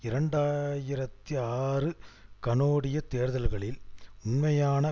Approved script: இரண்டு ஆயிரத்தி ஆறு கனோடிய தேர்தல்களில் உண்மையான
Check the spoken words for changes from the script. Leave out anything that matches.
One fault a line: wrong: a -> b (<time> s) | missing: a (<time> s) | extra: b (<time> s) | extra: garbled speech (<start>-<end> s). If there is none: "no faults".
no faults